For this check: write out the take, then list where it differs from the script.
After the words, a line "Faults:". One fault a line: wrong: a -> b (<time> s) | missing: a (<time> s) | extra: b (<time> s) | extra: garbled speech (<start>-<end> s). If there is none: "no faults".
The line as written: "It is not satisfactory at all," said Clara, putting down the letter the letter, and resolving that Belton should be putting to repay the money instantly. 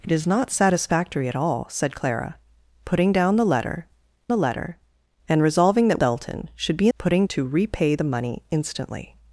"It is not satisfactory at all," said Clara, putting down the letter the letter, and resolving that Belton should be putting to repay the money instantly.
Faults:
no faults